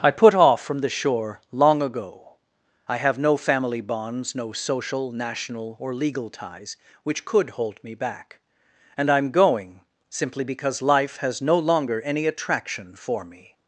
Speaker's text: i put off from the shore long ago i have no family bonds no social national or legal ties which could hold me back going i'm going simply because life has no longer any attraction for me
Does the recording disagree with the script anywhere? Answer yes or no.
yes